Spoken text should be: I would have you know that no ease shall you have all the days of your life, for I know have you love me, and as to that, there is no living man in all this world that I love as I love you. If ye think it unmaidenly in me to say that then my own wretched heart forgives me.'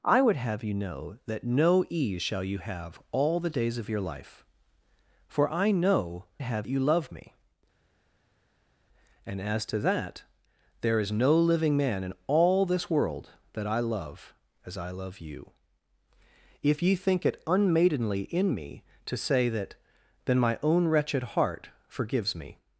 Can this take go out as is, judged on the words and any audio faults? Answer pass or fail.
pass